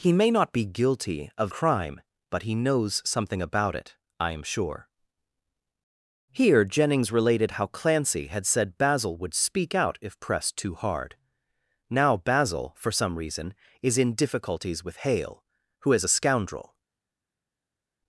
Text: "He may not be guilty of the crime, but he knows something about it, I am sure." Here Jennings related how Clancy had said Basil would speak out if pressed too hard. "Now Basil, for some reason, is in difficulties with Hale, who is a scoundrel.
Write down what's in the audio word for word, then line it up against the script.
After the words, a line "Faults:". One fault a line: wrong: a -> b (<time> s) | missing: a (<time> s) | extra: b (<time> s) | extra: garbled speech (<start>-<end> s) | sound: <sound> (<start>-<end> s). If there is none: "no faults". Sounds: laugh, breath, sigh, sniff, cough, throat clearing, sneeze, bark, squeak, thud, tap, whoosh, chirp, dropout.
"He may not be guilty of crime, but he knows something about it, I am sure." Here Jennings related how Clancy had said Basil would speak out if pressed too hard. "Now Basil, for some reason, is in difficulties with Hale, who is a scoundrel.
Faults:
missing: the (1.5 s)